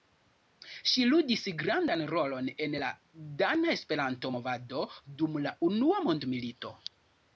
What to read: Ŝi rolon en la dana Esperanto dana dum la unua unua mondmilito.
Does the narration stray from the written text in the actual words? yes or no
yes